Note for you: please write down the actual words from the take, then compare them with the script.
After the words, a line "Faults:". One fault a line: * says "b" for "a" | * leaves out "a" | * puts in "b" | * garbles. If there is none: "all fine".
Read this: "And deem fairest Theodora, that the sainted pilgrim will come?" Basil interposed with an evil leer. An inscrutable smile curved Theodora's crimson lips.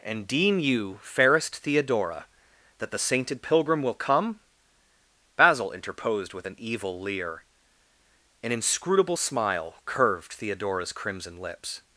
"And deem you, fairest Theodora, that the sainted pilgrim will come?" Basil interposed with an evil leer. An inscrutable smile curved Theodora's crimson lips.
Faults:
* puts in "you"